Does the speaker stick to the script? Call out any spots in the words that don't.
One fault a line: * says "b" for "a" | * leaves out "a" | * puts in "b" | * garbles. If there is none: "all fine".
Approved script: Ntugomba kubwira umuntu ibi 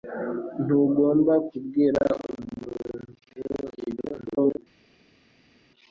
* garbles